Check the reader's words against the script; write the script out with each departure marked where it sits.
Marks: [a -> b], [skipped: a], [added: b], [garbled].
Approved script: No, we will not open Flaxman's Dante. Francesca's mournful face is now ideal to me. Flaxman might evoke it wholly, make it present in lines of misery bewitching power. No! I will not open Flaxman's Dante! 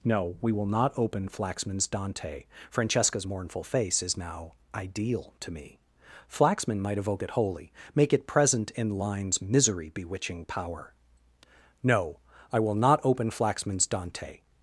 No, we will not open Flaxman's Dante. Francesca's mournful face is now ideal to me. Flaxman might evoke it wholly, make it present in lines [skipped: of] misery bewitching power. No! I will not open Flaxman's Dante!